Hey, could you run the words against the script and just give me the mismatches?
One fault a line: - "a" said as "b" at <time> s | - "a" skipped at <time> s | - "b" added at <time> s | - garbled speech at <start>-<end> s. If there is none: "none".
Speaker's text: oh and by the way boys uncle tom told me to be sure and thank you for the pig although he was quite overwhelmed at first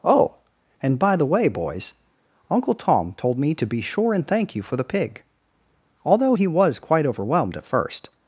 none